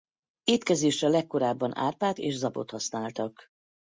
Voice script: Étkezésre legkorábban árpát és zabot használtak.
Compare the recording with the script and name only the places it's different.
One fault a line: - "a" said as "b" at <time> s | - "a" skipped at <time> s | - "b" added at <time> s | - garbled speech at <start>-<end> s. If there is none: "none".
none